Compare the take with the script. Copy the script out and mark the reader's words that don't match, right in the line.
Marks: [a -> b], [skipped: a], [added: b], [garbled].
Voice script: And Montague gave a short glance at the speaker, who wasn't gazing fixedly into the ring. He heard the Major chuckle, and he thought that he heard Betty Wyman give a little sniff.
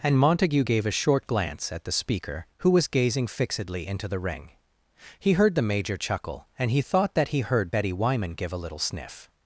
And Montague gave a short glance at the speaker, who [wasn't -> was] gazing fixedly into the ring. He heard the Major chuckle, and he thought that he heard Betty Wyman give a little sniff.